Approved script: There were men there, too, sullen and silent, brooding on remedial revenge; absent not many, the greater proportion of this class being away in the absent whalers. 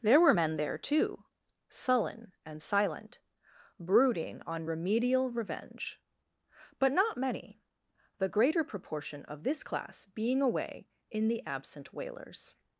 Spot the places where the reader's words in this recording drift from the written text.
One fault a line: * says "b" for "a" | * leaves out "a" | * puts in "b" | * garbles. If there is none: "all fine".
* says "but" for "absent"